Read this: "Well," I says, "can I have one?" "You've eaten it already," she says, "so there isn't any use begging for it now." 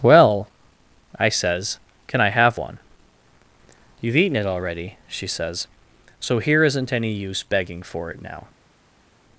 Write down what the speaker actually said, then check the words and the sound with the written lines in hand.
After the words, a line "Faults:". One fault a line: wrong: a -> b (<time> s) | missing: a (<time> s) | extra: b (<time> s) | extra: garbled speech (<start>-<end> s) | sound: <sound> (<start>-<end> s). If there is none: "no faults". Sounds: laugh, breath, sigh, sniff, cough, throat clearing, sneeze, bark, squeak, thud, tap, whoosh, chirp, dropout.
"Well," I says, "can I have one?" "You've eaten it already," she says, "so here isn't any use begging for it now."
Faults:
wrong: there -> here (6.4 s)